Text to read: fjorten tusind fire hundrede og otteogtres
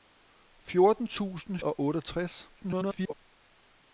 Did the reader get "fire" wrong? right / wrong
wrong